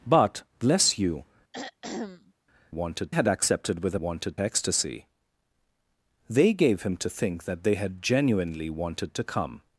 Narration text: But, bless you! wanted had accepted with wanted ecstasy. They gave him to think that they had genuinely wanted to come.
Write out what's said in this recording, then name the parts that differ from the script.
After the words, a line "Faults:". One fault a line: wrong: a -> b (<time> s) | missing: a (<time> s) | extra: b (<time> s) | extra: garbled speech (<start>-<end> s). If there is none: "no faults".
But, bless you! wanted had accepted with wanted ecstasy. They gave him to think that they had genuinely wanted to come.
Faults:
no faults